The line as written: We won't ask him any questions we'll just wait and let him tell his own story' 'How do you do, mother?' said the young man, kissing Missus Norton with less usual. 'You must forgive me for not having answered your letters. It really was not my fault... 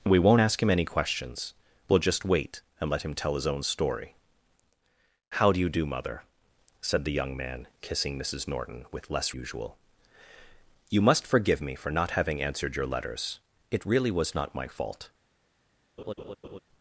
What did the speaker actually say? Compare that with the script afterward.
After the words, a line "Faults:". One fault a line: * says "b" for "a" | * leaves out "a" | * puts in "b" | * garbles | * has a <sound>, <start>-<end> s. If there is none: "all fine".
We won't ask him any questions we'll just wait and let him tell his own story' 'How do you do, mother?' said the young man, kissing Missus Norton with less usual. 'You must forgive me for not having answered your letters. It really was not my fault...
Faults:
* has a laugh, 16.0-16.6 s